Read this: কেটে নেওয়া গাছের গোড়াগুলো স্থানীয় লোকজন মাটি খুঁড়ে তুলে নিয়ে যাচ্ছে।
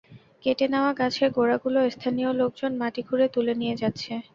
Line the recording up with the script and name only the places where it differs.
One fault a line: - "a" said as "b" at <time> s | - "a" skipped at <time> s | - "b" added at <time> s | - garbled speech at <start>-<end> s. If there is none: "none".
none